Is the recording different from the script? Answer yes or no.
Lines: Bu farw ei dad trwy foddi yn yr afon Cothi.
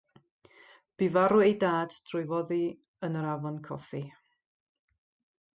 no